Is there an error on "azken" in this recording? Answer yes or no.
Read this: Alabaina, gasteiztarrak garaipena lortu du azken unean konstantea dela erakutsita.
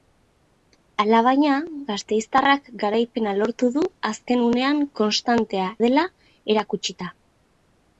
no